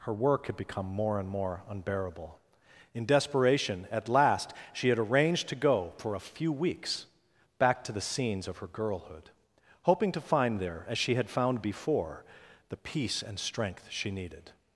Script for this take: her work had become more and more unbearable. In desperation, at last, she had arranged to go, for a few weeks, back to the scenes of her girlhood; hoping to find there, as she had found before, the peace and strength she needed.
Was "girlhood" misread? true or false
false